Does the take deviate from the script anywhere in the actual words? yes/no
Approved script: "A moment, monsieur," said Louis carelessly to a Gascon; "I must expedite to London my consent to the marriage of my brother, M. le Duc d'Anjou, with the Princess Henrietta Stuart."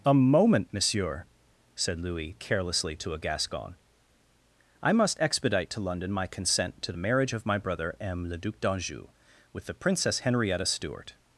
no